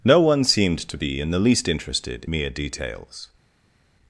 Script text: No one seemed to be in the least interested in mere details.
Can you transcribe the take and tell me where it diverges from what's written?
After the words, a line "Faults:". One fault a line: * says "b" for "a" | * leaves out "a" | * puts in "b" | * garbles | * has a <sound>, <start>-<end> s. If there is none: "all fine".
No one seemed to be in the least interested mere details.
Faults:
* leaves out "in"